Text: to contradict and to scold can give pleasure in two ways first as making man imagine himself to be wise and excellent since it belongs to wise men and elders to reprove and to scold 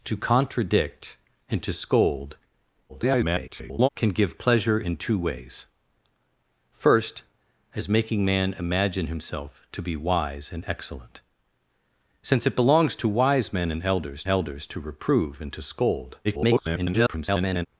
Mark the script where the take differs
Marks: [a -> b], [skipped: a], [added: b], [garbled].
to contradict and to scold [garbled] can give pleasure in two ways first as making man imagine himself to be wise and excellent since it belongs to wise men and elders [added: elders] to reprove and to scold [garbled]